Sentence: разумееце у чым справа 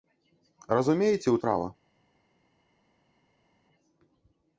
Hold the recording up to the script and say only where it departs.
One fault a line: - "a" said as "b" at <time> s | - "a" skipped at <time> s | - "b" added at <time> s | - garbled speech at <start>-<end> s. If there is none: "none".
- "чым" skipped at 1.4 s